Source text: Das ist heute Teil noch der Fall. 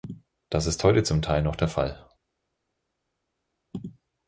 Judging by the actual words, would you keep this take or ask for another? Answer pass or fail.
fail